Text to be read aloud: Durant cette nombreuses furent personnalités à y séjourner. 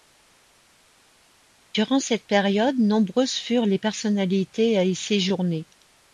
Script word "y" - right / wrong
right